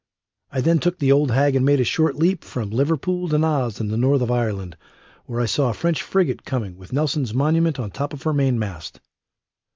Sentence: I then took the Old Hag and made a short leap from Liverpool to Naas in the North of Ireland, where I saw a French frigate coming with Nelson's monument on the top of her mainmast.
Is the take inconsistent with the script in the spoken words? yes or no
no